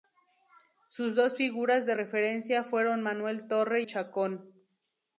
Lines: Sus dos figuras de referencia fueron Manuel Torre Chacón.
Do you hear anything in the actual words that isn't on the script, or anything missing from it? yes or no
no